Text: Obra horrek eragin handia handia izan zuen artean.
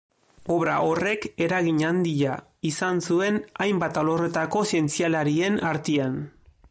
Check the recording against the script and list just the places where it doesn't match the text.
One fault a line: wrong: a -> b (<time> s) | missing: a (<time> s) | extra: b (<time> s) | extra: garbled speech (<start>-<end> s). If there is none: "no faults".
missing: handia (2.4 s)
extra: hainbat alorretako zientzialarien (3.6 s)